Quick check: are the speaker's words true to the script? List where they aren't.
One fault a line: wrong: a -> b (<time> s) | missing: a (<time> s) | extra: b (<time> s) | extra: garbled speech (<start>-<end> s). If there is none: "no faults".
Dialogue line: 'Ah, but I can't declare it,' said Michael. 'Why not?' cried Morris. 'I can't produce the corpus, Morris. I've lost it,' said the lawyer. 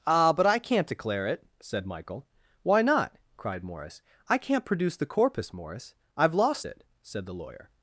no faults